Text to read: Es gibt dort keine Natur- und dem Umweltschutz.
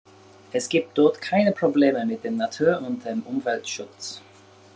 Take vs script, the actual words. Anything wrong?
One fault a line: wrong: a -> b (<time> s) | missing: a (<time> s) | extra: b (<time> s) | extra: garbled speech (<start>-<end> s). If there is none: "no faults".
extra: Probleme mit dem (1.5 s)